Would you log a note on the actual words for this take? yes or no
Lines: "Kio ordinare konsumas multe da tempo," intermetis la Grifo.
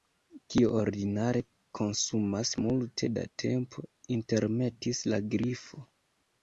no